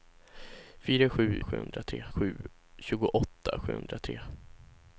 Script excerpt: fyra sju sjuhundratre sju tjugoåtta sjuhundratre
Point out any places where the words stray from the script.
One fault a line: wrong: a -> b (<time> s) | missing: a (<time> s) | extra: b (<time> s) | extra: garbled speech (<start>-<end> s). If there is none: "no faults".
no faults